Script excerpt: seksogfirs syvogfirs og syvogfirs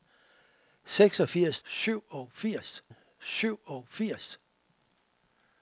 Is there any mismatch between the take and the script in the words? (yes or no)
no